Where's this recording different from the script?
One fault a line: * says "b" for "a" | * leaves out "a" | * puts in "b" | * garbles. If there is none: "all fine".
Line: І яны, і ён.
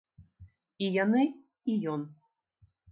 all fine